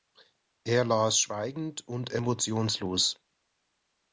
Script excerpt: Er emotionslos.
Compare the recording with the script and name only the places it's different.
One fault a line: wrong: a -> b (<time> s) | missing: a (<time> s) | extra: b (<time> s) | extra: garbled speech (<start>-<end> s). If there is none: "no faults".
extra: las schweigend und (0.8 s)